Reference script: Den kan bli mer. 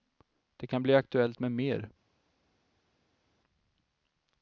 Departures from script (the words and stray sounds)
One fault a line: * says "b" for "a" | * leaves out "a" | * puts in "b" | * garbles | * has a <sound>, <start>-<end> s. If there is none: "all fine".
* says "Det" for "Den"
* puts in "aktuellt med"